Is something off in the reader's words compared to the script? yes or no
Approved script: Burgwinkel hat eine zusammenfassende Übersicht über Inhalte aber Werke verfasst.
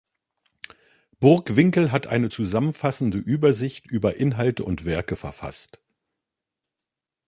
yes